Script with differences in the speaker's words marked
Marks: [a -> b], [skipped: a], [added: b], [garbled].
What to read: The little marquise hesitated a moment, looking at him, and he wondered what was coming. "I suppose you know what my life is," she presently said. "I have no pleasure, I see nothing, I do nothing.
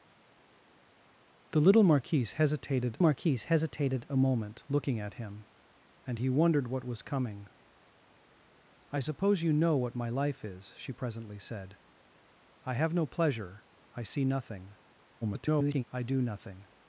The little marquise hesitated [added: marquise hesitated] a moment, looking at him, and he wondered what was coming. "I suppose you know what my life is," she presently said. "I have no pleasure, I see nothing, [garbled] I do nothing.